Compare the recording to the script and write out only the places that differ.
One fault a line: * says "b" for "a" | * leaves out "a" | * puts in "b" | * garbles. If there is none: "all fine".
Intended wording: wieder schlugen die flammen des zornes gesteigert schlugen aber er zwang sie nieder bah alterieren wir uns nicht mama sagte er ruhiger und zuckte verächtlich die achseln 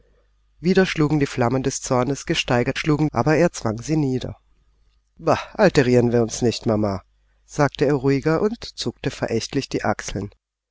all fine